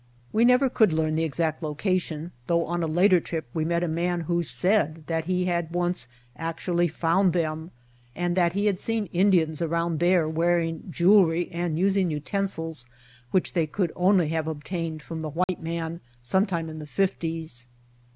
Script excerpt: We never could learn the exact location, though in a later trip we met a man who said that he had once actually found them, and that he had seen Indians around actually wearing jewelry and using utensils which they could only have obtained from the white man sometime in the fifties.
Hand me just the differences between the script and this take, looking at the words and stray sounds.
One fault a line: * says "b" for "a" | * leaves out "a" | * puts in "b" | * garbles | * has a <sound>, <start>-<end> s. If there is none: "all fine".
* says "on" for "in"
* says "there" for "actually"
* has a dropout, 15.4-15.5 s